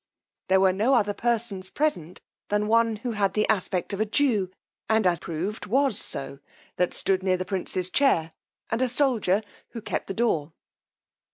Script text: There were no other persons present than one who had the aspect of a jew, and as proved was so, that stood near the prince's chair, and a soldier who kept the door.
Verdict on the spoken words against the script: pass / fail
pass